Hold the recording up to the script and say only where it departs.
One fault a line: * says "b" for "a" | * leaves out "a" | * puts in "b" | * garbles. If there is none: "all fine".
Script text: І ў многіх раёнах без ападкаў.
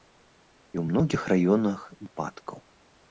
* leaves out "без"